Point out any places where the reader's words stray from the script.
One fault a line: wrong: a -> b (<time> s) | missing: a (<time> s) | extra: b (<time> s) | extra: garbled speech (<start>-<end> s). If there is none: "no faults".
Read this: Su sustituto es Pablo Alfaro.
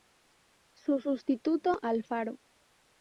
missing: es Pablo (1.8 s)